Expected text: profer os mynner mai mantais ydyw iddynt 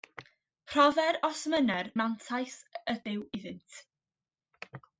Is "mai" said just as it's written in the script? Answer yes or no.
no